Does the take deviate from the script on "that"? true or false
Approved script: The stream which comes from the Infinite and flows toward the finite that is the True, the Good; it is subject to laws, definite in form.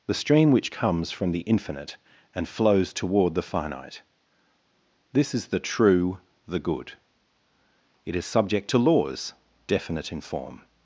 true